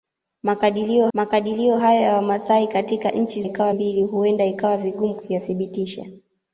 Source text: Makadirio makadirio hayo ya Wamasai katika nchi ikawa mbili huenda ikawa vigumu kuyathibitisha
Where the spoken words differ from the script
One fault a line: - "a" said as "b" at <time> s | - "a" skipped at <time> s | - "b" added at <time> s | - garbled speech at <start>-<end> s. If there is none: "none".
none